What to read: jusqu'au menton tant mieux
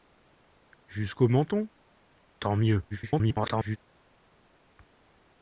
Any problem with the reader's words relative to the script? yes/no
yes